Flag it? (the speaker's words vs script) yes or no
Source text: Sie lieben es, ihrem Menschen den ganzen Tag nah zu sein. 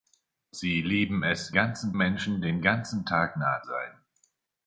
yes